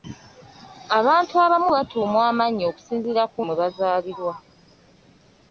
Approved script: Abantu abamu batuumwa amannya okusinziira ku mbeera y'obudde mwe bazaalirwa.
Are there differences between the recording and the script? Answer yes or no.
yes